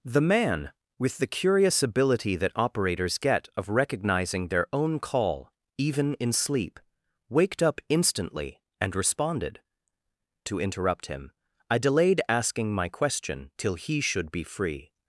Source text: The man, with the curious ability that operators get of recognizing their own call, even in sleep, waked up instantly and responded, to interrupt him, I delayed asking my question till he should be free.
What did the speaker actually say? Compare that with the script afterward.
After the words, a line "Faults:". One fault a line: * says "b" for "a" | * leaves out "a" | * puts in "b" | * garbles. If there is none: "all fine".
The man, with the curious ability that operators get of recognizing their own call, even in sleep, waked up instantly and responded, to interrupt him, I delayed asking my question till he should be free.
Faults:
all fine